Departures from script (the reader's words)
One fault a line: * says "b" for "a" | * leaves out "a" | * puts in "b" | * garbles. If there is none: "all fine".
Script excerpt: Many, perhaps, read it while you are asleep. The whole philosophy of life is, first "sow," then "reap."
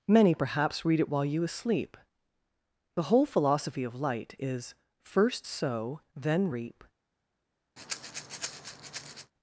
* leaves out "are"
* says "light" for "life"